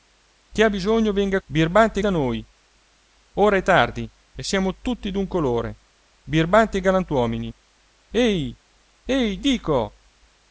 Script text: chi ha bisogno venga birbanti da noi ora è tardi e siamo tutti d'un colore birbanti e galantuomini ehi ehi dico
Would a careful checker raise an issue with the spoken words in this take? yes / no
no